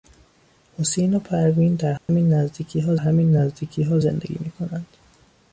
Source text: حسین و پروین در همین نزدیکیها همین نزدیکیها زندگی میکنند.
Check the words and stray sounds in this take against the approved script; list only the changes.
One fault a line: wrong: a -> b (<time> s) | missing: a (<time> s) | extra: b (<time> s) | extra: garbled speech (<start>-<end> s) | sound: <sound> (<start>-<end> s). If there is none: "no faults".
sound: dropout (2.0-2.1 s)